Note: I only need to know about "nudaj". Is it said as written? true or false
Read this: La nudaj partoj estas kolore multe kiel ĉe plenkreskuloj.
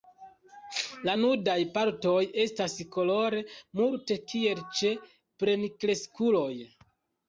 true